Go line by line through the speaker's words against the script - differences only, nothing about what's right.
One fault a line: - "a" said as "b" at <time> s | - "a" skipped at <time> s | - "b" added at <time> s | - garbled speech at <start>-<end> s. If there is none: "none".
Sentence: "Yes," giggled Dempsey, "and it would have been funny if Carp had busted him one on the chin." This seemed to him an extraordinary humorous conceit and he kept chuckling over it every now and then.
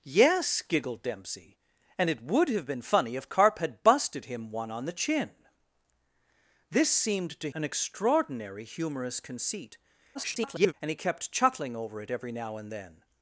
- "him" skipped at 7.5 s
- garbled speech at 10.1-10.7 s